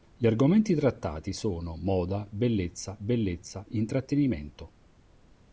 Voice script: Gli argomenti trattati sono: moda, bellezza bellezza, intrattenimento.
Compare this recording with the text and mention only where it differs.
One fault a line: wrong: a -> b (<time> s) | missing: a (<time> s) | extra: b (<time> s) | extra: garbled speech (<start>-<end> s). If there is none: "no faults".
no faults